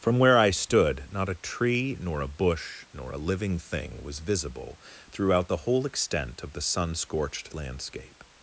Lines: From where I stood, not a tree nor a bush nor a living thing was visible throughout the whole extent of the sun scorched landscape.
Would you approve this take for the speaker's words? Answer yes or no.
yes